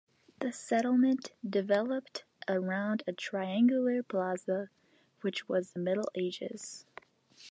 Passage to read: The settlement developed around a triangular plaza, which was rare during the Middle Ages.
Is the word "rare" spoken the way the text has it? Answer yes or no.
no